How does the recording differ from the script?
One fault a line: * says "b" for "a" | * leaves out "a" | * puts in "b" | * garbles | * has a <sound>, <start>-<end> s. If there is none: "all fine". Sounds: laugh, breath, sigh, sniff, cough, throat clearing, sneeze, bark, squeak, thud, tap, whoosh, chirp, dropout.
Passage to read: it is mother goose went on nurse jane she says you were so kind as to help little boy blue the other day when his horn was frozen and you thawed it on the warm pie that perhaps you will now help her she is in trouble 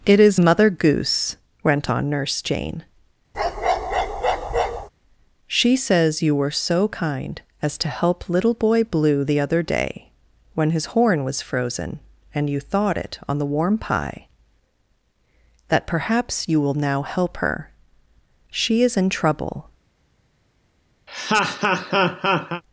* has a bark, 3.3-4.9 s
* has a laugh, 21.1-22.6 s